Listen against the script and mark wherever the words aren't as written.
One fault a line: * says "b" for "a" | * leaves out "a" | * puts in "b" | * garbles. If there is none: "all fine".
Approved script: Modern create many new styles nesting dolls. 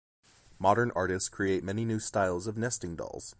* puts in "artists"
* puts in "of"